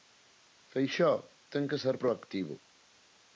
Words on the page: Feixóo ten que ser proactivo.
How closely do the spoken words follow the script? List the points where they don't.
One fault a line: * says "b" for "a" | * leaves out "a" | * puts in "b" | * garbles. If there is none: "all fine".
all fine